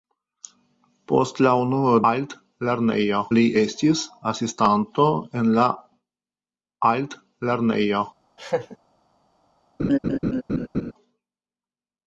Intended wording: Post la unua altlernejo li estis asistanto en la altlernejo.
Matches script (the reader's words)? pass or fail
pass